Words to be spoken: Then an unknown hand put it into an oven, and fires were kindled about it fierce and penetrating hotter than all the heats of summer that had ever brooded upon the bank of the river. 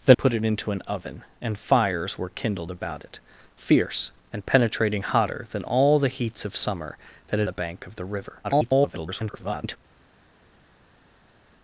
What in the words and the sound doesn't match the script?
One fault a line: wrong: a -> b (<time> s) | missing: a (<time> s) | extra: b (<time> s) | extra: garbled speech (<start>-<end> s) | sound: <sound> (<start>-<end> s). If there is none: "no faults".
missing: an unknown hand (0.2 s)
missing: ever brooded upon (7.5 s)
extra: garbled speech (8.4-9.8 s)